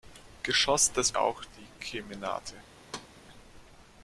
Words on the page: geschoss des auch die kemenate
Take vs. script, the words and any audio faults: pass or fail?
fail